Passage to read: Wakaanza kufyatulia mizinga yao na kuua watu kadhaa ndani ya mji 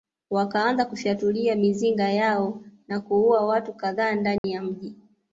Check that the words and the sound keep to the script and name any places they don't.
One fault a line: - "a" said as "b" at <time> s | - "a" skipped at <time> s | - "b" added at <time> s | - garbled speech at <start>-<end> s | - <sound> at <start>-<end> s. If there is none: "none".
- dropout at 4.4-4.4 s